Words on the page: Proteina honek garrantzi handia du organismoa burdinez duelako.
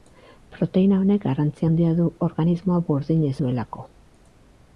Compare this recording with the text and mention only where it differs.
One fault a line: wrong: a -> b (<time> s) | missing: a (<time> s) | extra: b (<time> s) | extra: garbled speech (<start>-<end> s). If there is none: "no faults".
no faults